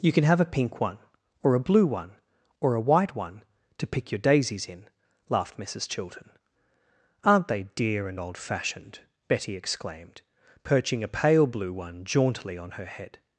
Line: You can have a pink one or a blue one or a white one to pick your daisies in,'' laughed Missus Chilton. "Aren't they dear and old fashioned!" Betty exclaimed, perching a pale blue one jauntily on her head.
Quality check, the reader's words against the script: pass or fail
pass